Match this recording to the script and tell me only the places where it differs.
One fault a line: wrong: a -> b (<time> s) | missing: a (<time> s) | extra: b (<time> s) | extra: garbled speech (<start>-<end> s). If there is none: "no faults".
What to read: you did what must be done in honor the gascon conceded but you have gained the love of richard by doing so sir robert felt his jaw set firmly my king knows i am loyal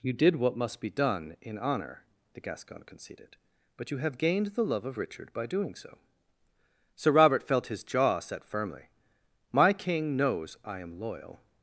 no faults